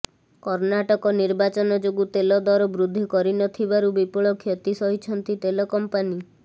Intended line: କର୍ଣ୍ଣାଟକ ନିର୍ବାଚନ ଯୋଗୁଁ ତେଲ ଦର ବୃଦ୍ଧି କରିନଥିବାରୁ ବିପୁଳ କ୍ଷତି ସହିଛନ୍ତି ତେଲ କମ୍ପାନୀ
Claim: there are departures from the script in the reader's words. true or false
false